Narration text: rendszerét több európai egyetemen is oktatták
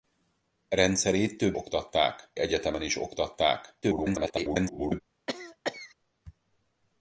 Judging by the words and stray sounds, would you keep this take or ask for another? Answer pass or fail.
fail